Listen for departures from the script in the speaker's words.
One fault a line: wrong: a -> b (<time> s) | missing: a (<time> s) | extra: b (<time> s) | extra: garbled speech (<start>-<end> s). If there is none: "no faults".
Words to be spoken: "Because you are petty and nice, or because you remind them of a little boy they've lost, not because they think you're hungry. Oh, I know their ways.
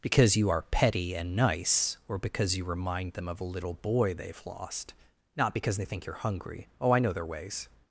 no faults